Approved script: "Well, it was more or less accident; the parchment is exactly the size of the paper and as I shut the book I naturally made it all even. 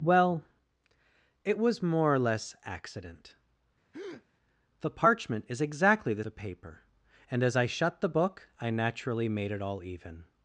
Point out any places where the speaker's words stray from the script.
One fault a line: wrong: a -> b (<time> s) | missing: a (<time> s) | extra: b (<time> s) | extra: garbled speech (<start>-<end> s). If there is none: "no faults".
missing: size of (6.2 s)